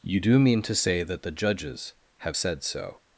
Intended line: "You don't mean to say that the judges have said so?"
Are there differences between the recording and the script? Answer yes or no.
yes